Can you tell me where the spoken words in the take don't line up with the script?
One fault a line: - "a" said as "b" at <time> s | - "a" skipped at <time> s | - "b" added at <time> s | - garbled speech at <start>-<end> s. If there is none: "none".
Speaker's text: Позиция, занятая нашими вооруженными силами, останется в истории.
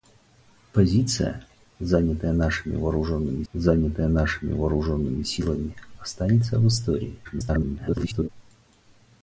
- "занятая нашими вооруженными" added at 3.5 s
- garbled speech at 7.2-8.3 s